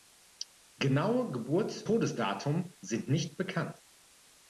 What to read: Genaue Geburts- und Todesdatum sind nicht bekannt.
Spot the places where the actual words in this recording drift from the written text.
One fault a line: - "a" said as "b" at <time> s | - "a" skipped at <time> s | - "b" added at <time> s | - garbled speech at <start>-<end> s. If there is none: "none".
- "und" skipped at 1.8 s